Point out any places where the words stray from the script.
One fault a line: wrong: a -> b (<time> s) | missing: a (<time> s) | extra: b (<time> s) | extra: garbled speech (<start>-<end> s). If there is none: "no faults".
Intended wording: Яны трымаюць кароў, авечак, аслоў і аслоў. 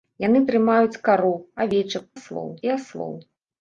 no faults